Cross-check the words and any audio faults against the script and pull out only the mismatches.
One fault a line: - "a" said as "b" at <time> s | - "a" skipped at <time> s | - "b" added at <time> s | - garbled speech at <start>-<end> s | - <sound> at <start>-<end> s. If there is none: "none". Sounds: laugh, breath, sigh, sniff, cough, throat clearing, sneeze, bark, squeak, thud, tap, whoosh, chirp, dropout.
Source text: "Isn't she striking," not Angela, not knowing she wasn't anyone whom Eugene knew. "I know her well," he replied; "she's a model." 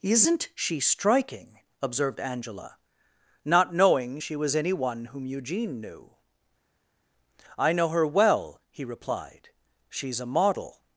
- "not" said as "observed" at 1.8 s
- "wasn't" said as "was" at 4.4 s